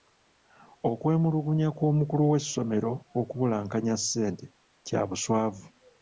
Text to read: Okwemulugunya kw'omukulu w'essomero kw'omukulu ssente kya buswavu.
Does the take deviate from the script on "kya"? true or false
false